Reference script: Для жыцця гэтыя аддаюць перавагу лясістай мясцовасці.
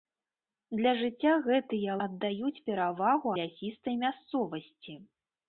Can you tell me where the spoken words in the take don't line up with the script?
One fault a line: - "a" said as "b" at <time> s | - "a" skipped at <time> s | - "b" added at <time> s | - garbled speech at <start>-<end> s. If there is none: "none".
none